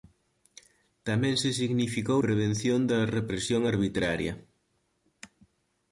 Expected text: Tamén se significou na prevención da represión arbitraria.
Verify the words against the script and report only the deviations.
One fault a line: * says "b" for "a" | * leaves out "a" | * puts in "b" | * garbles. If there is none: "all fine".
* leaves out "na"